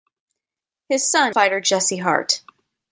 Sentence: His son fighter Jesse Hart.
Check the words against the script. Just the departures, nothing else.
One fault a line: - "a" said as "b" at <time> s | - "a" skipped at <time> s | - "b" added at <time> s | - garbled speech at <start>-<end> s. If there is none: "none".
none